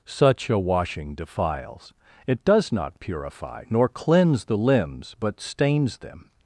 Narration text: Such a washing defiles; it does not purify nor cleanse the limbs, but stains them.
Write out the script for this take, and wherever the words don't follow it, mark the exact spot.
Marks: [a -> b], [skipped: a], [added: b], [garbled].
Such a washing defiles; it does not purify nor cleanse the limbs, but stains them.